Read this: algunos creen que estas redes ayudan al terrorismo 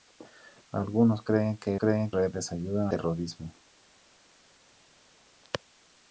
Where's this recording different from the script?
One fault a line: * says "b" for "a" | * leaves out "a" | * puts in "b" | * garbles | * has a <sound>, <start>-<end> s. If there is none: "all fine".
* says "creen" for "estas"
* leaves out "al"